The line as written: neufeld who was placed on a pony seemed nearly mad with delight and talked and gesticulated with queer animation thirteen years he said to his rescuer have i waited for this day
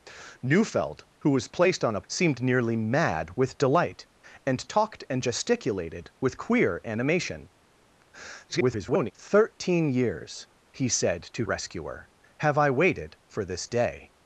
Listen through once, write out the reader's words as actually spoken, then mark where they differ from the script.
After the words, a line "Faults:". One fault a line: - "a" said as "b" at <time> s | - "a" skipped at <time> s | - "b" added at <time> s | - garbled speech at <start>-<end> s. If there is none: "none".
neufeld who was placed on a seemed nearly mad with delight and talked and gesticulated with queer animation [garbled] thirteen years he said to rescuer have i waited for this day
Faults:
- "pony" skipped at 2.0 s
- garbled speech at 8.5-9.1 s
- "his" skipped at 11.4 s